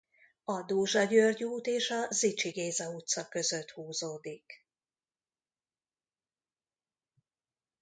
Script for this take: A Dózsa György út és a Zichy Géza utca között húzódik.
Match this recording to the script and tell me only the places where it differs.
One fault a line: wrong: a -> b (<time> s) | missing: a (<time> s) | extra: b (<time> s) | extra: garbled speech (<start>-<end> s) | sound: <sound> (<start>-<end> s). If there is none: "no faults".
no faults